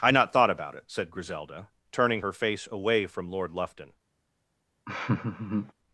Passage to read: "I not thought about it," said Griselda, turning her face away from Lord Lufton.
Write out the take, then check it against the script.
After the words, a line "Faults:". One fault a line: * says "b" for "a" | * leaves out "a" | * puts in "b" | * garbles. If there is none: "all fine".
"I not thought about it," said Griselda, turning her face away from Lord Lufton.
Faults:
all fine